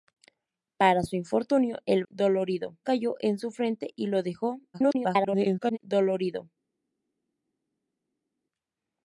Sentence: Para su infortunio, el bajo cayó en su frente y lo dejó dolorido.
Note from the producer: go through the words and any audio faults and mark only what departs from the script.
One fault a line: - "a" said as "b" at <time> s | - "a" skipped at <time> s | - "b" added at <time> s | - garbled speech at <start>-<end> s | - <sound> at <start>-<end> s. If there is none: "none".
- "bajo" said as "dolorido" at 2.1 s
- garbled speech at 4.7-5.8 s